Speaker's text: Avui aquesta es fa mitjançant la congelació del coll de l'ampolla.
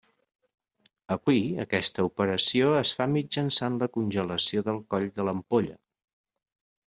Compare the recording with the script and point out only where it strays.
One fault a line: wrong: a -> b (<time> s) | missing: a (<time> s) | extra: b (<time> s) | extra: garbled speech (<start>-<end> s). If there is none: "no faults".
extra: operació (2.1 s)